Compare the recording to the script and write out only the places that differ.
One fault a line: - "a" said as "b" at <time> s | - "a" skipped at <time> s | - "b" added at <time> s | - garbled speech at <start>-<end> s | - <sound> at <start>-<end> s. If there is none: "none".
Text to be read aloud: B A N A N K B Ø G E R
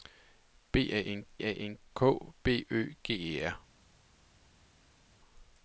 none